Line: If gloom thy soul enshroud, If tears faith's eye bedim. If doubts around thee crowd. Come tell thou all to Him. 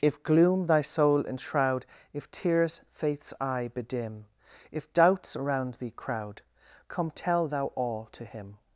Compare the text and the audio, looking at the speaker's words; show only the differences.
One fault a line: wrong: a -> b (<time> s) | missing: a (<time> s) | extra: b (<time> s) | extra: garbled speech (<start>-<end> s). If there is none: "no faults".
no faults